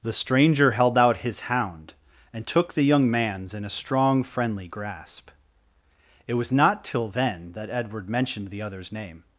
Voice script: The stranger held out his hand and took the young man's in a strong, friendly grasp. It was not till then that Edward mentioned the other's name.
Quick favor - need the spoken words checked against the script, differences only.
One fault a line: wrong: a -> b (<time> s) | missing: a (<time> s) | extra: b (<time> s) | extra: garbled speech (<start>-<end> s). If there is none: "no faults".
wrong: hand -> hound (1.4 s)